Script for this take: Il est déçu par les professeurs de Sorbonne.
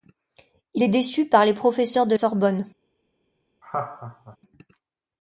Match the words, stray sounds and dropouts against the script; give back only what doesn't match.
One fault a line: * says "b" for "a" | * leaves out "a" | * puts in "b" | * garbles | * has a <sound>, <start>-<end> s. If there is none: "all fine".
* has a laugh, 3.6-4.4 s